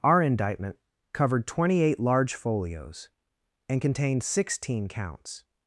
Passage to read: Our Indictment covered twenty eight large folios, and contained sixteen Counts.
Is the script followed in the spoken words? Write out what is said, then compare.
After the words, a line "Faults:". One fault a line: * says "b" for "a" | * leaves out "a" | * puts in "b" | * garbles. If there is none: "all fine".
Our Indictment covered twenty eight large folios, and contained sixteen Counts.
Faults:
all fine